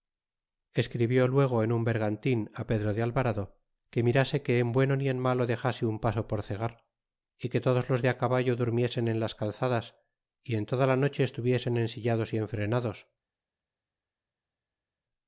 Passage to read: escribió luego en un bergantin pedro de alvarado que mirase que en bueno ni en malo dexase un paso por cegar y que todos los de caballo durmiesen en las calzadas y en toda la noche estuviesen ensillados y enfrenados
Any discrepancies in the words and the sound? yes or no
no